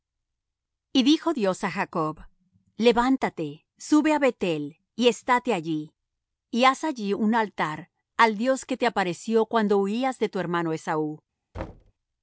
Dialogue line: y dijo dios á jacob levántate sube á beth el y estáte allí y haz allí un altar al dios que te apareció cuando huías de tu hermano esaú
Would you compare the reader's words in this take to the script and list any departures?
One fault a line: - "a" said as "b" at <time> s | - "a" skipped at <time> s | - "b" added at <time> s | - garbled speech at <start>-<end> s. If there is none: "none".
none